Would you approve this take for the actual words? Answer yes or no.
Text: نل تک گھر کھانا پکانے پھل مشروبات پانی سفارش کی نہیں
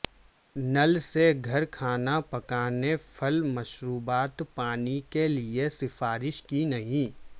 no